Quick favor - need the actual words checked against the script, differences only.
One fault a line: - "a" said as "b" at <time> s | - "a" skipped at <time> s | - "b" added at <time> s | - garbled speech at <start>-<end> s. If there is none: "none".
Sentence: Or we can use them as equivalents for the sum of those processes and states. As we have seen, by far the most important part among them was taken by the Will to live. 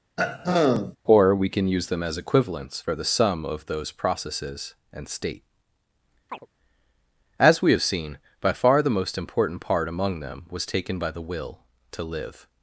- "states" said as "state" at 5.1 s